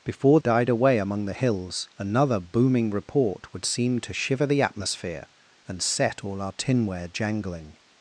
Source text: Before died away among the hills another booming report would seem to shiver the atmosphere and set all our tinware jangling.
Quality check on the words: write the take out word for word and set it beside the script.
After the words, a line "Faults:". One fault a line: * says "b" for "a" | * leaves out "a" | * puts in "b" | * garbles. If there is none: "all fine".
Before died away among the hills another booming report would seem to shiver the atmosphere and set all our tinware jangling.
Faults:
all fine